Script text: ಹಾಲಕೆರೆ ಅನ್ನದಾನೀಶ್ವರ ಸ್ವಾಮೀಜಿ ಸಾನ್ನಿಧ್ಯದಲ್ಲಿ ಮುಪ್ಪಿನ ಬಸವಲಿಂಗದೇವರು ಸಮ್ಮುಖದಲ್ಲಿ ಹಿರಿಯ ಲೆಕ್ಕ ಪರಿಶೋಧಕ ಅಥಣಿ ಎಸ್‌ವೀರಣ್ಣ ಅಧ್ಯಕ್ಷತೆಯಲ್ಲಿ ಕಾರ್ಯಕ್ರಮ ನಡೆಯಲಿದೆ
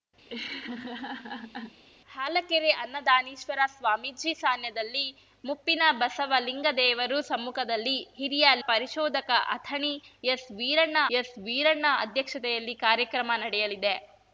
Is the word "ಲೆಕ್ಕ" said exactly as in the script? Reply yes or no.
no